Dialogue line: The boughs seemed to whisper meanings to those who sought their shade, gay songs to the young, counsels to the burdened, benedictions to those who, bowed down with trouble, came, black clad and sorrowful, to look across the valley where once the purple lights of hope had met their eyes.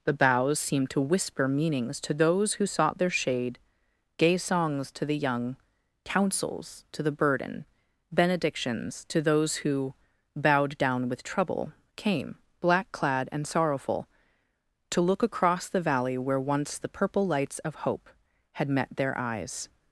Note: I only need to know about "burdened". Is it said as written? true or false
false